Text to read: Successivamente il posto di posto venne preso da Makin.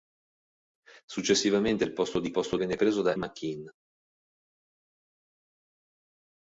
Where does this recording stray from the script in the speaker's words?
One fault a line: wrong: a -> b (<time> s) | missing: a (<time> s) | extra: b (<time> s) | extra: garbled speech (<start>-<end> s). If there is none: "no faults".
no faults